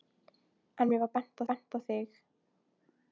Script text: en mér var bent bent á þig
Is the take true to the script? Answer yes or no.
yes